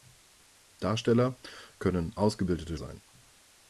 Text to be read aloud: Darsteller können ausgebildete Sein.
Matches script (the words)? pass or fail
pass